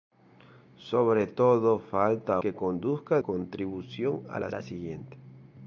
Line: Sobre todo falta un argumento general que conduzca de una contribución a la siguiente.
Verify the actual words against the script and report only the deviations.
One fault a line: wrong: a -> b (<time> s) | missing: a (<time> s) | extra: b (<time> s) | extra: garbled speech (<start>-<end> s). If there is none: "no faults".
missing: un argumento general (2.4 s)
missing: de una (3.2 s)
extra: la (4.5 s)